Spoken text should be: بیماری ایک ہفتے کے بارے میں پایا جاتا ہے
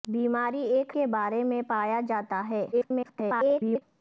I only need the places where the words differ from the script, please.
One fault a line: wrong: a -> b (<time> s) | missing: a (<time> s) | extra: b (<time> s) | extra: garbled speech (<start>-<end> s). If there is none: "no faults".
missing: ہفتے (0.9 s)
extra: garbled speech (2.7-3.8 s)